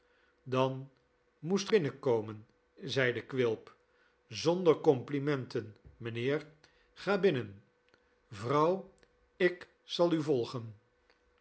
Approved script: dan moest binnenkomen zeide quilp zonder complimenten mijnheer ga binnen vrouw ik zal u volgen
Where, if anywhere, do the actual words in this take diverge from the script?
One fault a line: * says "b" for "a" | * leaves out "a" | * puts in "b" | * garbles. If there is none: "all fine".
all fine